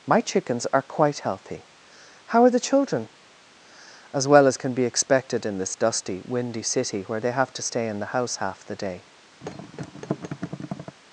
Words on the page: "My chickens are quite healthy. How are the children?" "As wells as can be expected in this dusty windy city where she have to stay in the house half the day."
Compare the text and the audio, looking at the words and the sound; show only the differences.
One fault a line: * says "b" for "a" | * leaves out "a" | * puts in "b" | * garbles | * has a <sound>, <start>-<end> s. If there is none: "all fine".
* says "well" for "wells"
* says "they" for "she"
* has a thud, 9.4-11.0 s